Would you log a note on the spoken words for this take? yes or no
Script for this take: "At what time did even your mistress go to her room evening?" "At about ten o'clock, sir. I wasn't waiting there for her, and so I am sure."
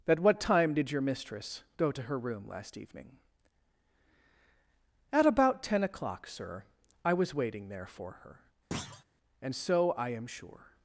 yes